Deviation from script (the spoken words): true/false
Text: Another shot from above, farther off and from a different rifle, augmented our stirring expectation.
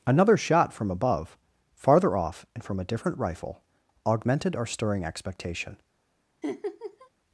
false